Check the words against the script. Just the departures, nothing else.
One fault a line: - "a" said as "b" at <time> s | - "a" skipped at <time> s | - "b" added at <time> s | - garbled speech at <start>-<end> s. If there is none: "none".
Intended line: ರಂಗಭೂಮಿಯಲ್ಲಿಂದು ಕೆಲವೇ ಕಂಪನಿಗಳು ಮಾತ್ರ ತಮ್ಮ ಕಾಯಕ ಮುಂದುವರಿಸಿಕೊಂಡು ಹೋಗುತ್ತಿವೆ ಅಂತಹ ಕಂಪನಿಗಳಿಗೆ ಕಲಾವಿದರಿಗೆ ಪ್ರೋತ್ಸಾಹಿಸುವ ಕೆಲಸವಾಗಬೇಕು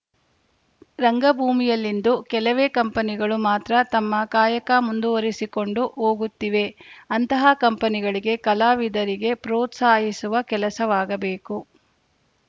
none